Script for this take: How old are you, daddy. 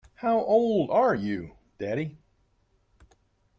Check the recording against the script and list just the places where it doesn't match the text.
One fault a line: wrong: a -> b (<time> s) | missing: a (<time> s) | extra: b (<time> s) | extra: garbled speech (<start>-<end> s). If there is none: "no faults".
no faults